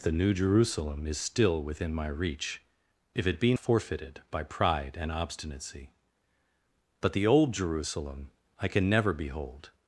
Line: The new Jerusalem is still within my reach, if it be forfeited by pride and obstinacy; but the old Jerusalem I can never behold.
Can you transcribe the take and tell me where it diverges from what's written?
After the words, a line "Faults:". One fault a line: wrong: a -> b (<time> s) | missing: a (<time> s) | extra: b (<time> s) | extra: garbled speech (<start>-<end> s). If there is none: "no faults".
The new Jerusalem is still within my reach, if it be forfeited by pride and obstinacy; but the old Jerusalem I can never behold.
Faults:
no faults